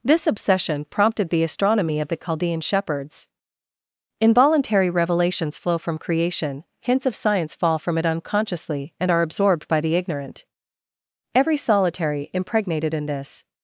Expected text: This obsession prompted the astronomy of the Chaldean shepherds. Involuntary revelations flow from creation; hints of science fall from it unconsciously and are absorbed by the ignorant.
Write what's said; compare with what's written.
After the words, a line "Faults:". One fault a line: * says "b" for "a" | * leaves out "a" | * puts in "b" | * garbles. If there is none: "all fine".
This obsession prompted the astronomy of the Chaldean shepherds. Involuntary revelations flow from creation; hints of science fall from it unconsciously and are absorbed by the ignorant. Every solitary, impregnated in this
Faults:
* puts in "Every solitary impregnated in this"